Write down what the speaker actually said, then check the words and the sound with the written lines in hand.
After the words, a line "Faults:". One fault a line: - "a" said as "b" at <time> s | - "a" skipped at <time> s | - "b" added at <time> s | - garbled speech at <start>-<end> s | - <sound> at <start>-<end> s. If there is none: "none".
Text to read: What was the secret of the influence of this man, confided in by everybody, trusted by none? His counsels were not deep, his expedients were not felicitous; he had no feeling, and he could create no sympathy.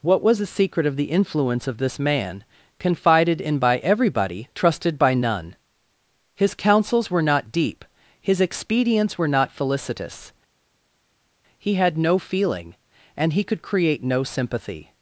What was the secret of the influence of this man, confided in by everybody, trusted by none? His counsels were not deep, his expedients were not felicitous; he had no feeling, and he could create no sympathy.
Faults:
none